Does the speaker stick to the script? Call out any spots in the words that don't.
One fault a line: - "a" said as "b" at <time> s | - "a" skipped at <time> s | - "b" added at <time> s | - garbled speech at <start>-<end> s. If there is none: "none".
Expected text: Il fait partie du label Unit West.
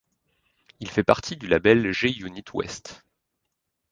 - "G" added at 1.9 s